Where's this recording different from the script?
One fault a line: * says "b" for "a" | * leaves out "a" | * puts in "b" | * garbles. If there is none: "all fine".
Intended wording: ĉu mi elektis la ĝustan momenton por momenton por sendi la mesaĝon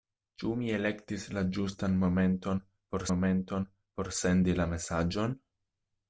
all fine